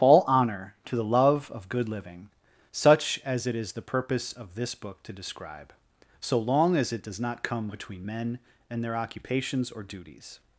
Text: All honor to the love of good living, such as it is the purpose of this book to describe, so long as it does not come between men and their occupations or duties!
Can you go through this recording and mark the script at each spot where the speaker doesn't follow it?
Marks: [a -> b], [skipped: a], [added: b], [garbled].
All honor to the love of good living, such as it is the purpose of this book to describe, so long as it does not come between men and their occupations or duties!